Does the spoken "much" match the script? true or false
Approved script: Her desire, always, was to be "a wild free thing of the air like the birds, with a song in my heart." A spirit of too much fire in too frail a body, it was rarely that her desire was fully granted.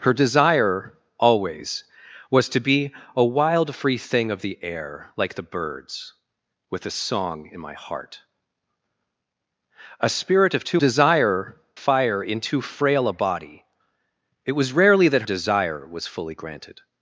false